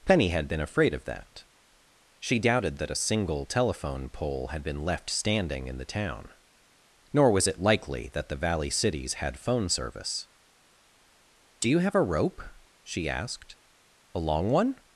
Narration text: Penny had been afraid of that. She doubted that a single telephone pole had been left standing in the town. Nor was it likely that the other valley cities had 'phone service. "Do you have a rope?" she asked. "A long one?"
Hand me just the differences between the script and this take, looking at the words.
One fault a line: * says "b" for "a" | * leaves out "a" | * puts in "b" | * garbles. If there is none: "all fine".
* leaves out "other"